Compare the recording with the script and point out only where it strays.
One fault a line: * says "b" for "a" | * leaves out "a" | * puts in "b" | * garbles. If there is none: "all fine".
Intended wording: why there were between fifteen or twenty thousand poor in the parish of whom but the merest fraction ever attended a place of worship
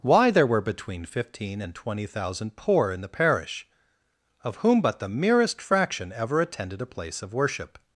* says "and" for "or"